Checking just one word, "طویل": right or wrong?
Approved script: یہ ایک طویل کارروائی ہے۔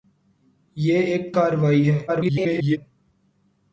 wrong